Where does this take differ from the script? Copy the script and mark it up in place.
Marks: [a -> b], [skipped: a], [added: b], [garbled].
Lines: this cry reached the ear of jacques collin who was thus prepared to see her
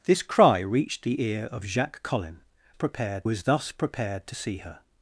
this cry reached the ear of jacques collin [who -> prepared] was thus prepared to see her